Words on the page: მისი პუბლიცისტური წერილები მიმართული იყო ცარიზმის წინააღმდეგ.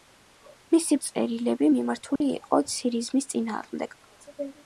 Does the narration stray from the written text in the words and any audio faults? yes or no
yes